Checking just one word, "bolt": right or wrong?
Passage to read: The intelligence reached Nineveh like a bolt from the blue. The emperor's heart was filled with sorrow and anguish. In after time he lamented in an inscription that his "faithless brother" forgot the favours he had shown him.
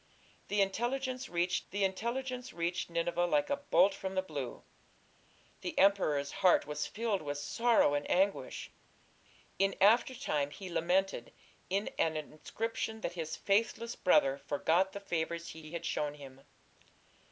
right